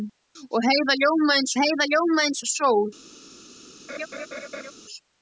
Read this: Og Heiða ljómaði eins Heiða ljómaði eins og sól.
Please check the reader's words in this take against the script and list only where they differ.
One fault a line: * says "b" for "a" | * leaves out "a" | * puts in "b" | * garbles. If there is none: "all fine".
all fine